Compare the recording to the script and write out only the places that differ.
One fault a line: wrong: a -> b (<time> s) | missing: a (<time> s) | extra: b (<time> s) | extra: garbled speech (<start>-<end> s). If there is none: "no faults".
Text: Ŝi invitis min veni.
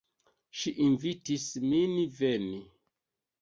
no faults